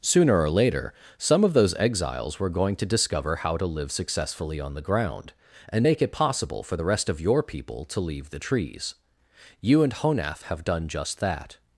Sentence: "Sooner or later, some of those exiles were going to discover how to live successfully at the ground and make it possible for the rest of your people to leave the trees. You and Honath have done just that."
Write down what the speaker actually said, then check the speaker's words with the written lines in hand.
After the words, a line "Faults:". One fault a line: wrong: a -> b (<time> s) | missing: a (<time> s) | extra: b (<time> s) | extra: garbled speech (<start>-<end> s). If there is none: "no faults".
"Sooner or later, some of those exiles were going to discover how to live successfully on the ground and make it possible for the rest of your people to leave the trees. You and Honath have done just that."
Faults:
wrong: at -> on (4.6 s)